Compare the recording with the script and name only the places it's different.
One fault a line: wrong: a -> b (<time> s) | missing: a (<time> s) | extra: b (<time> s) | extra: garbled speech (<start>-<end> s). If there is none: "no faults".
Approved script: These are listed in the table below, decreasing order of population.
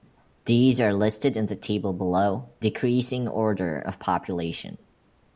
no faults